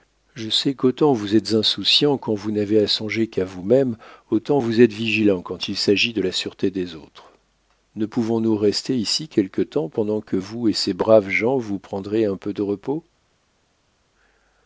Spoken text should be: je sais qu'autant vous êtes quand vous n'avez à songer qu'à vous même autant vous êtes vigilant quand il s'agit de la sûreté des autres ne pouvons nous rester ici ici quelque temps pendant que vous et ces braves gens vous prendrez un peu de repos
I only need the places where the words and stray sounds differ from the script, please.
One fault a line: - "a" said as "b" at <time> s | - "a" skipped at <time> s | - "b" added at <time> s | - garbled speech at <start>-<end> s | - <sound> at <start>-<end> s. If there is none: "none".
- "insouciant" added at 1.5 s
- "ici" skipped at 9.3 s